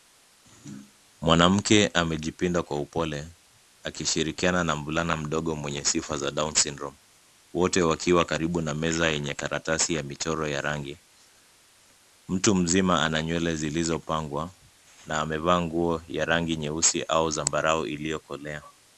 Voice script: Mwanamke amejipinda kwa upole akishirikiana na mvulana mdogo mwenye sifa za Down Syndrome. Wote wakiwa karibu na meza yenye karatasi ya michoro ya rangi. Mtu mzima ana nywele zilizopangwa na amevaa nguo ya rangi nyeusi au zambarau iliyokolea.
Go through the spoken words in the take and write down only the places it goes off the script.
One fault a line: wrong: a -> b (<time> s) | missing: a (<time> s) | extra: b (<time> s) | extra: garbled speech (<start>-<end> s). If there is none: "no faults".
no faults